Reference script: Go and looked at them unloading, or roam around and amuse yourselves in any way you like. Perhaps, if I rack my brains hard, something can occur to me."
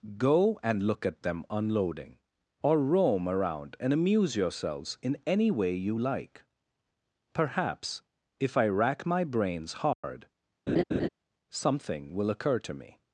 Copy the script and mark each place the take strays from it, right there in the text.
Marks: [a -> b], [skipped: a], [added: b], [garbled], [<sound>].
Go and [looked -> look] at them unloading, or roam around and amuse yourselves in any way you like. Perhaps, if I rack my brains hard, [dropout] [laugh] something [can -> will] occur to me."